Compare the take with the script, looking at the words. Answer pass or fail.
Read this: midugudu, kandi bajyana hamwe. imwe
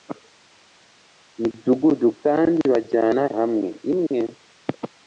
pass